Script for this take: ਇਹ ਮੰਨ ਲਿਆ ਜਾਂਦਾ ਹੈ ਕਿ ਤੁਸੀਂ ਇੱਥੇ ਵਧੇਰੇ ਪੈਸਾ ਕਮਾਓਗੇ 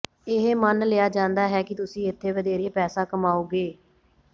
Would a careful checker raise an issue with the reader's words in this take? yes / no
no